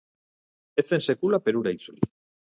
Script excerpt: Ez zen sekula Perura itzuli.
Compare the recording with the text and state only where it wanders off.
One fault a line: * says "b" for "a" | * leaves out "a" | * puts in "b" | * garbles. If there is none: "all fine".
all fine